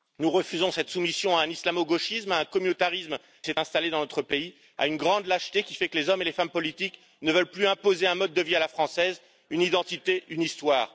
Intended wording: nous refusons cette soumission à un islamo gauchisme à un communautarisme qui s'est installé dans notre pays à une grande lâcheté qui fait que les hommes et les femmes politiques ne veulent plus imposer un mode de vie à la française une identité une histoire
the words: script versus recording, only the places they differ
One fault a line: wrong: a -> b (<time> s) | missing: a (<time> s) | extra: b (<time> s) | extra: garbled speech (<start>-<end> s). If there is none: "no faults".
missing: qui (3.2 s)